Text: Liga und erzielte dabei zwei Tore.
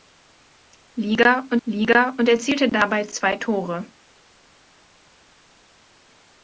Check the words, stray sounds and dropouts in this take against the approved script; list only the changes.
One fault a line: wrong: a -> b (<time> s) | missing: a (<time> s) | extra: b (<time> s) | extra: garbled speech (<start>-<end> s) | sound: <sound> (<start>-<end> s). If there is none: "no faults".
extra: liga und (1.6 s)